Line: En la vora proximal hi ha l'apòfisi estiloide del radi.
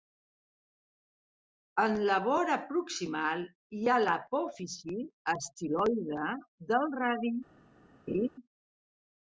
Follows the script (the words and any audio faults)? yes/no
no